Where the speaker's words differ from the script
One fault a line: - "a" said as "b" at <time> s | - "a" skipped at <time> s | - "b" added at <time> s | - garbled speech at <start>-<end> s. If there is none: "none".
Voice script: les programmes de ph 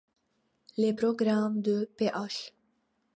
none